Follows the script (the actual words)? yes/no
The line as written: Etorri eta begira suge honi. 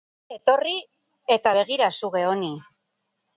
yes